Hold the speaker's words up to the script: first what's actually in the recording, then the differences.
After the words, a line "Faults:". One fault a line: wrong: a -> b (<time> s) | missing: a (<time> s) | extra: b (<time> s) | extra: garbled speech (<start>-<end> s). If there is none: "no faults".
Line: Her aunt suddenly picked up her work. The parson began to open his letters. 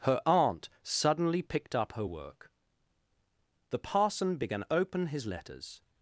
Her aunt suddenly picked up her work. The parson began open his letters.
Faults:
missing: to (4.6 s)